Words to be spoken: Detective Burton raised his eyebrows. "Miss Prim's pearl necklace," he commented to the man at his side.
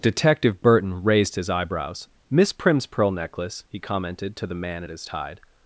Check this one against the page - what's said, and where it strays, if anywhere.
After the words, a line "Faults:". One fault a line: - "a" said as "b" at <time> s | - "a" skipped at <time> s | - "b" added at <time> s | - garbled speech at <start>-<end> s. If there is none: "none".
Detective Burton raised his eyebrows. "Miss Prim's pearl necklace," he commented to the man at his tide.
Faults:
- "side" said as "tide" at 5.0 s